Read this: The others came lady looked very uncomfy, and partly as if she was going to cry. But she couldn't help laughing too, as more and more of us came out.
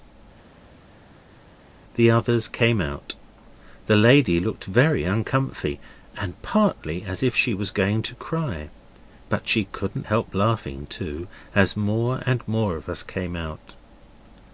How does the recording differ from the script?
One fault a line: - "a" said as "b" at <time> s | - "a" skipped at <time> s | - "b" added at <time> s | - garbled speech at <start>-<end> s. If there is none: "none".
- "out The" added at 2.8 s